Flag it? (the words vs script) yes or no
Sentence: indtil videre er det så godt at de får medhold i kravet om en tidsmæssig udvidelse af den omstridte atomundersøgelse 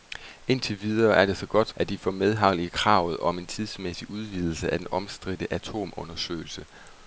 no